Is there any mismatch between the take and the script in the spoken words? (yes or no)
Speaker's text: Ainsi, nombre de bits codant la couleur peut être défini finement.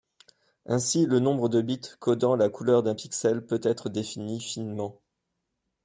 yes